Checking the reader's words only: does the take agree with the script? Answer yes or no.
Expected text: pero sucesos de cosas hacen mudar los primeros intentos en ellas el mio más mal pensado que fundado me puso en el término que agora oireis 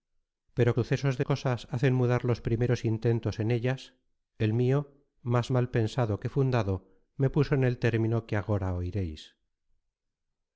yes